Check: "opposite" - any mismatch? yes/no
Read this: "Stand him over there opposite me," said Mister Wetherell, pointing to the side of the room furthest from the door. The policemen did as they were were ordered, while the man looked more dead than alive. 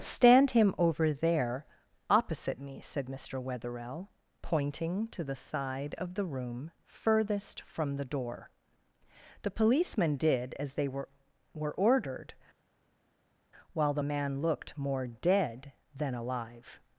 no